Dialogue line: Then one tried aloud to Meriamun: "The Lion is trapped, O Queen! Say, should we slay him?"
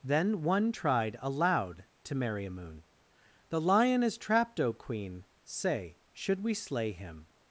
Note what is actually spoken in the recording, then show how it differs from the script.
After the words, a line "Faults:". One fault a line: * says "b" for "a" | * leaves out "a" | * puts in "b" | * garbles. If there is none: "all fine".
Then one tried aloud to Meriamun: "The Lion is trapped, O Queen! Say, should we slay him?"
Faults:
all fine